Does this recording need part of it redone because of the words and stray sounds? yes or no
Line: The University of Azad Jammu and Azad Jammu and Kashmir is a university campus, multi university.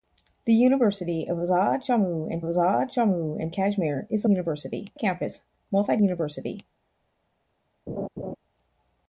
yes